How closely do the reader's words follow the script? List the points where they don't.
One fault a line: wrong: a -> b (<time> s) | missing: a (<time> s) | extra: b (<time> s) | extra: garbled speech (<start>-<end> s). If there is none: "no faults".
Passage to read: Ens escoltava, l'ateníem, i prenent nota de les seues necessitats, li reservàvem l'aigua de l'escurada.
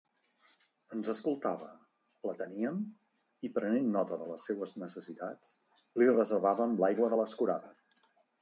no faults